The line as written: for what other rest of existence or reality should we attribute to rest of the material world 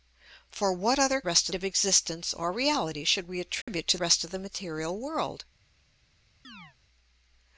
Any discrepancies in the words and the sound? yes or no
yes